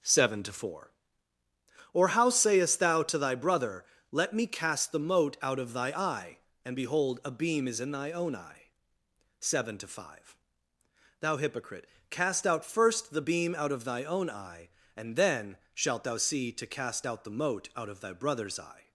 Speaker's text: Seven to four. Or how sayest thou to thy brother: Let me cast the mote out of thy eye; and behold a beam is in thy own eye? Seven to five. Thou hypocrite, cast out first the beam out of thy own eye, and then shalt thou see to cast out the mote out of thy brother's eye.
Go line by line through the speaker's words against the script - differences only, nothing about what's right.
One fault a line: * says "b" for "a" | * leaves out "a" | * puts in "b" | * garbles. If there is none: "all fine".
all fine